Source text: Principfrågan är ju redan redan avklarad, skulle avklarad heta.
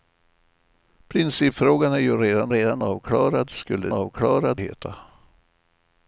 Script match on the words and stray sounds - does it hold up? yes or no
yes